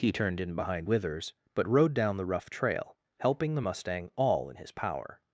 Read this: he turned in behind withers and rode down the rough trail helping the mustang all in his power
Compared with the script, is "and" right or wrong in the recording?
wrong